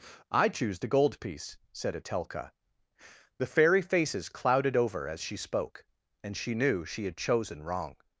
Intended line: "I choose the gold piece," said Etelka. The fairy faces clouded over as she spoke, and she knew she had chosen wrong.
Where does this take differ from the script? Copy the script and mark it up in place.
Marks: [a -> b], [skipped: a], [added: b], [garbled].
"I choose the gold piece," said Etelka. The fairy faces clouded over as she spoke, and she knew she had chosen wrong.